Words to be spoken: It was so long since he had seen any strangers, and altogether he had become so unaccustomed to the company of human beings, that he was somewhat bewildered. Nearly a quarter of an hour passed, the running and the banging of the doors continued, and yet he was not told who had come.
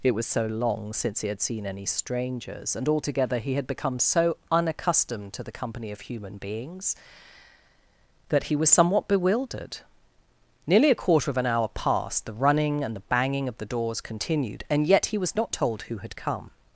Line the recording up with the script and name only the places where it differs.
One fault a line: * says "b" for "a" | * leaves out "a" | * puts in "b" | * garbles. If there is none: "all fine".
all fine